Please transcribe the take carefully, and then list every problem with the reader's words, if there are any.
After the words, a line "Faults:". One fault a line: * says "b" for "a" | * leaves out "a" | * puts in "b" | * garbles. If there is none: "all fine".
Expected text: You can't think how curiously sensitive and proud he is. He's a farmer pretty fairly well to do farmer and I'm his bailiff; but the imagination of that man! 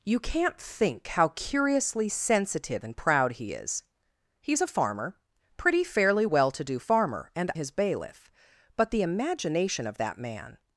You can't think how curiously sensitive and proud he is. He's a farmer pretty fairly well to do farmer and His bailiff; but the imagination of that man!
Faults:
* leaves out "I'm"